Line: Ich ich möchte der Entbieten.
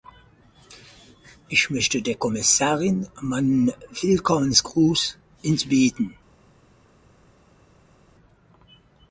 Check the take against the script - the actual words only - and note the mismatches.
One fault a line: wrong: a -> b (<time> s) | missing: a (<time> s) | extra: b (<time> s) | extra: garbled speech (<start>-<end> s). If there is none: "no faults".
missing: ich (1.7 s)
extra: Kommissarin meinen Willkommensgruß (2.1 s)